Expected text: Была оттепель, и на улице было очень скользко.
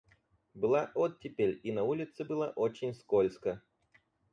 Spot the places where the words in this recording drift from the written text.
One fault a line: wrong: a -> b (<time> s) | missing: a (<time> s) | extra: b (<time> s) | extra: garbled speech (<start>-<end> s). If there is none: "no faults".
no faults